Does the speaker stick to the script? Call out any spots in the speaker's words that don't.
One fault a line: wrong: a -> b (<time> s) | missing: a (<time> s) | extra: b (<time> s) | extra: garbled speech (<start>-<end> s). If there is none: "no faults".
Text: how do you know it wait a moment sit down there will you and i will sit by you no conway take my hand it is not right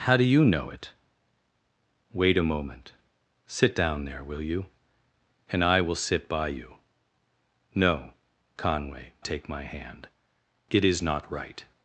no faults